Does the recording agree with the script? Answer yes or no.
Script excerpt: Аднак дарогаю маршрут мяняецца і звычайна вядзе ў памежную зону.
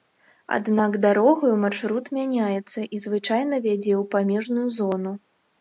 yes